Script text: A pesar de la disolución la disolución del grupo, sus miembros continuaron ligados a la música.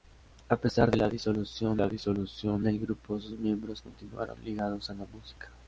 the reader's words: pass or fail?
pass